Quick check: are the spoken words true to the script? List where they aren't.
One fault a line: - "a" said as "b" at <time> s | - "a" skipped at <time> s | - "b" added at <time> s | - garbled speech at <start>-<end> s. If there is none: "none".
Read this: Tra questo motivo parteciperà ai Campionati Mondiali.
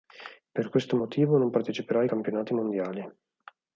- "Tra" said as "Per" at 0.5 s
- "non" added at 1.4 s